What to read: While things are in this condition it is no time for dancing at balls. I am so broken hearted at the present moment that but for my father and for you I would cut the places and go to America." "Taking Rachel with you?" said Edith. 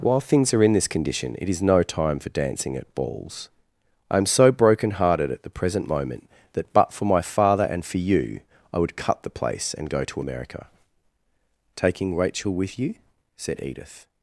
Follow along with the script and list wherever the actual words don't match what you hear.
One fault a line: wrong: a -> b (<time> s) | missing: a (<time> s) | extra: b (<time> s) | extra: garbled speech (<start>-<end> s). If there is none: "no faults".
wrong: places -> place (9.3 s)